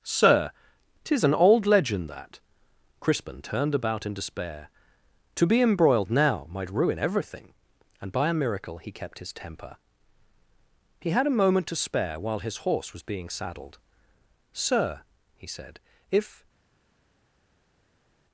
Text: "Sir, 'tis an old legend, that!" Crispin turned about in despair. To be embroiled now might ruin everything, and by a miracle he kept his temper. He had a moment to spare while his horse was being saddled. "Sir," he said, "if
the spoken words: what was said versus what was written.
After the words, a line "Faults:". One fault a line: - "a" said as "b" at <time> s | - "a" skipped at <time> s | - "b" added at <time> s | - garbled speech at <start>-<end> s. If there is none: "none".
"Sir, 'tis an old legend, that!" Crispin turned about in despair. To be embroiled now might ruin everything, and by a miracle he kept his temper. He had a moment to spare while his horse was being saddled. "Sir," he said, "if
Faults:
none